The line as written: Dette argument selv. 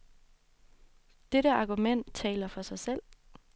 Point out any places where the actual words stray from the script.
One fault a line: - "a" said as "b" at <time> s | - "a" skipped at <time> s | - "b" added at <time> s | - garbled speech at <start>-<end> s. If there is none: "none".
- "taler for sig" added at 2.1 s